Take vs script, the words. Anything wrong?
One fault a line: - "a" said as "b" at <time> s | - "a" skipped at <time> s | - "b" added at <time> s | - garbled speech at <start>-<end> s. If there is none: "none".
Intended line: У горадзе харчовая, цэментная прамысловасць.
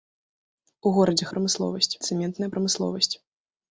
- "харчовая" said as "прамысловасць" at 1.4 s